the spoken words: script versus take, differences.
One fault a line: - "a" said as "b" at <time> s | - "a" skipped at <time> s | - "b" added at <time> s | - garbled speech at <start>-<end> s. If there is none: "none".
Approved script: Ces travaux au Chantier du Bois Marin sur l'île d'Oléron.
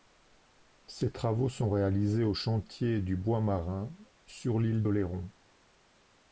- "sont réalisés" added at 1.5 s